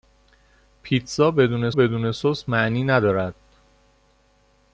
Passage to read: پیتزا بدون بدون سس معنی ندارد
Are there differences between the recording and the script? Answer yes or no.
no